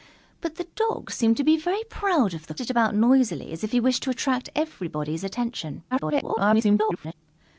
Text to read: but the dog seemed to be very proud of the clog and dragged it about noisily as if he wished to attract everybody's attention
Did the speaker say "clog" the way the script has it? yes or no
no